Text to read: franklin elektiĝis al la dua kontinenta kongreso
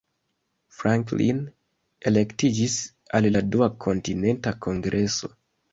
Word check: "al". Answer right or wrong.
right